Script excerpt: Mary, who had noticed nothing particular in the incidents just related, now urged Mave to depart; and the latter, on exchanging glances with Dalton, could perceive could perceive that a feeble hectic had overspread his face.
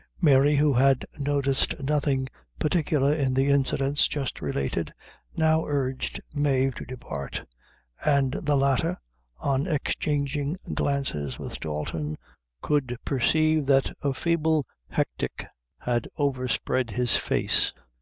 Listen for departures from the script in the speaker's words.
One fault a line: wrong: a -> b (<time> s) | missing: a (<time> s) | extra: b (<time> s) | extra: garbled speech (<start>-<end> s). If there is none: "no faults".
missing: could perceive (13.7 s)